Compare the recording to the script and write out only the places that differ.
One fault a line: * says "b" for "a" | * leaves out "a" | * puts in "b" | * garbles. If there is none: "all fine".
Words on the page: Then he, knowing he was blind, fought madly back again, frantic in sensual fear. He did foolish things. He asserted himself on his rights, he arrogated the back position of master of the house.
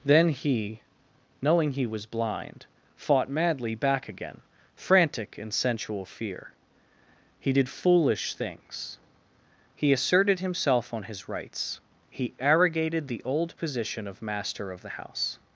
* says "old" for "back"